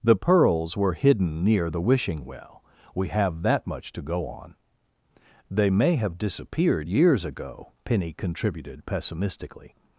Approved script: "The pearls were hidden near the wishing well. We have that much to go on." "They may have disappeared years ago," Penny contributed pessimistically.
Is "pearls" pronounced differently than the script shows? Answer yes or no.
no